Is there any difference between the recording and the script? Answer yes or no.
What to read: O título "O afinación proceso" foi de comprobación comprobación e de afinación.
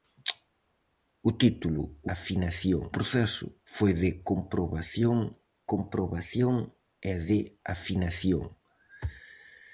no